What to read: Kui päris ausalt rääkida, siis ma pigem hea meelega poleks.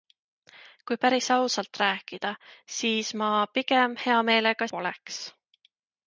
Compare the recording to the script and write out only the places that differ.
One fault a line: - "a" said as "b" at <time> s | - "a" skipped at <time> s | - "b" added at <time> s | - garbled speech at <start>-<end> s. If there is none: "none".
none